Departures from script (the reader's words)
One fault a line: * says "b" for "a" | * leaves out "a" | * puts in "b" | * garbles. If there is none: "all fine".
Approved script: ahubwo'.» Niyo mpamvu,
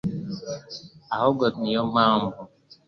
all fine